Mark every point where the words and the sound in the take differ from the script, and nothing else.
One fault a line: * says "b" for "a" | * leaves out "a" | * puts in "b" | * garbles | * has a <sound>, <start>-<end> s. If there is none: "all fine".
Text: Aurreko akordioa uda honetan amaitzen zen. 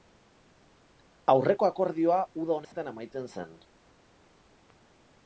* has a dropout, 2.6-2.7 s